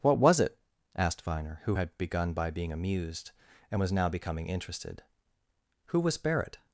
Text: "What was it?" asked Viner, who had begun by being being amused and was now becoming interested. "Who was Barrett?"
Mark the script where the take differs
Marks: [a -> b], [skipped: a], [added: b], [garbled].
"What was it?" asked Viner, who had begun by being [skipped: being] amused and was now becoming interested. "Who was Barrett?"